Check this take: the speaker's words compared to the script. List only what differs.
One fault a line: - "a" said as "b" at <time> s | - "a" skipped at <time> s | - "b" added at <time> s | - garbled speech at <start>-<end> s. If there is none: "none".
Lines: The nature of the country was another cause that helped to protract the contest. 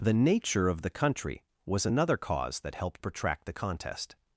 - "to" skipped at 3.0 s